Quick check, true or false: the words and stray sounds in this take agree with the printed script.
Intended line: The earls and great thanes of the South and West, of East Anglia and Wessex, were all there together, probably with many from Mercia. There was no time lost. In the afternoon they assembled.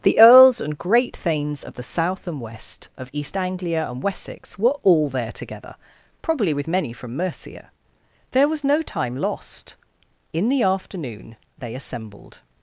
true